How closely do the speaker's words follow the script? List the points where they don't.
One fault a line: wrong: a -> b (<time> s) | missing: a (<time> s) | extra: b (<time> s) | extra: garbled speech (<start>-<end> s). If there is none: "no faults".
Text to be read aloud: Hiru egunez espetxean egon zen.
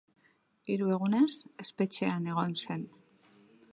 no faults